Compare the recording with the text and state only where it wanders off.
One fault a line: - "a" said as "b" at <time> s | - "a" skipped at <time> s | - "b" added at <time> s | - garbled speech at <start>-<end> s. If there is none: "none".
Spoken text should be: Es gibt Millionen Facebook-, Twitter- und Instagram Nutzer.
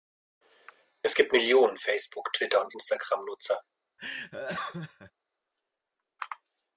none